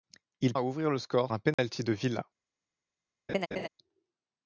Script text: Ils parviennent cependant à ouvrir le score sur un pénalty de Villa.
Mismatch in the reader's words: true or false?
true